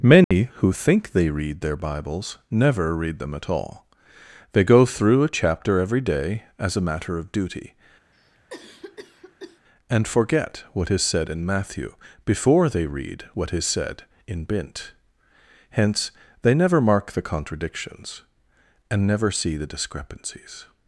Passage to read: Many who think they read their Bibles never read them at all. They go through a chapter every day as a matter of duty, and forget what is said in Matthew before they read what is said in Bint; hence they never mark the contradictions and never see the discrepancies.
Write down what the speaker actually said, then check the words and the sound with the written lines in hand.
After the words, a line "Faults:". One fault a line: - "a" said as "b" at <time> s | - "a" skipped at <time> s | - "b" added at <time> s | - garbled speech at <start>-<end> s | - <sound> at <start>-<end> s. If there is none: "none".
Many who think they read their Bibles never read them at all. They go through a chapter every day as a matter of duty, and forget what is said in Matthew before they read what is said in Bint; hence they never mark the contradictions and never see the discrepancies.
Faults:
- dropout at 0.2-0.3 s
- cough at 8.1-9.6 s